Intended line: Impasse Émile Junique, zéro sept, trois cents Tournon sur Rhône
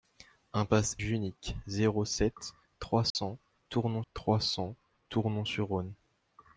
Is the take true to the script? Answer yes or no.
no